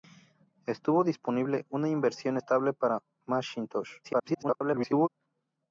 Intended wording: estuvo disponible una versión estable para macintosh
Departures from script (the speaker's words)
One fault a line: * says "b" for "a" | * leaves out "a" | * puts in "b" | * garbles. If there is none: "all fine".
* garbles